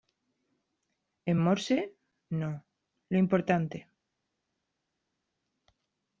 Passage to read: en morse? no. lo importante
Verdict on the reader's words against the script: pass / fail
pass